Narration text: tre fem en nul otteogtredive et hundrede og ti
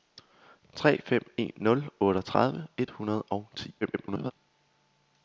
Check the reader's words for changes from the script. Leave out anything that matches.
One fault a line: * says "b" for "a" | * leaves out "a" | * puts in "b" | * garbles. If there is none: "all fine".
* garbles